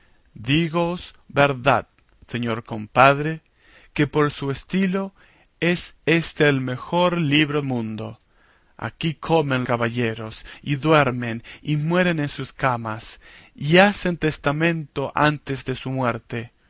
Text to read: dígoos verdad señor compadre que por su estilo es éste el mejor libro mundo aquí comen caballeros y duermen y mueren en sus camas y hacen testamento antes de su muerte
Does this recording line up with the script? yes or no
yes